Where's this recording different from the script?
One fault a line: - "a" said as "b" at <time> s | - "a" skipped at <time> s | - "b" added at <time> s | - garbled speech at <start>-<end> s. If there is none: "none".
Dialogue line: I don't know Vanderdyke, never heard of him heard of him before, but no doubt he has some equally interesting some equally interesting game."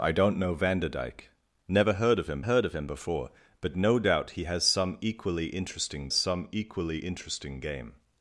none